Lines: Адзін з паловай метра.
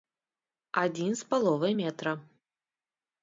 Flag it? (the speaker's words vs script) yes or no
no